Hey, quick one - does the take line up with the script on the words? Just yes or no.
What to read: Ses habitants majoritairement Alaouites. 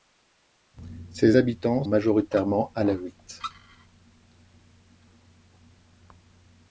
yes